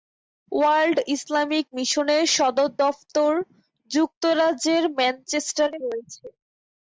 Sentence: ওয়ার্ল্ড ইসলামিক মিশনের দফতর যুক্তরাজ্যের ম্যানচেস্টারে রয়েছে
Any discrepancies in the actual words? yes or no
yes